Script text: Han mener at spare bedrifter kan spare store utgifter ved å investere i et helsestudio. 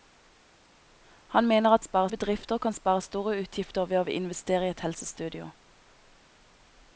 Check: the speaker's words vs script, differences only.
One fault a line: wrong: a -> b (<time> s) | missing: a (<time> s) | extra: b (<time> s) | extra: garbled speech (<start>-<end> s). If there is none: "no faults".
no faults